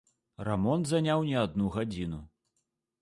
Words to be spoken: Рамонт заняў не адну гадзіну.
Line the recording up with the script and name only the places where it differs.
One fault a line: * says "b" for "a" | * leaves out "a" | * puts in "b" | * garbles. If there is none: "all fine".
all fine